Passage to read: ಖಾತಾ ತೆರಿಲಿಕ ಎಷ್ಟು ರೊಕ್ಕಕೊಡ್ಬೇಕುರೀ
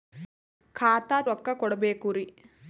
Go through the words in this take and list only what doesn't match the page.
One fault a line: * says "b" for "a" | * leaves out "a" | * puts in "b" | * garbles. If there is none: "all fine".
* leaves out "ತೆರಿಲಿಕ ಎಷ್ಟು"